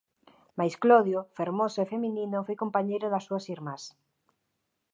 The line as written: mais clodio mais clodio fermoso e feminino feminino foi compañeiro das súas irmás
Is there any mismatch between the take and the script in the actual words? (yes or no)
yes